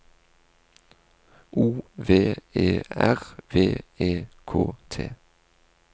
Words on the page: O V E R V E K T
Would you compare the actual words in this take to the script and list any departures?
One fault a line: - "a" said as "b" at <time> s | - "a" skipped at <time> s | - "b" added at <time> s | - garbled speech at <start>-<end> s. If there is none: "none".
none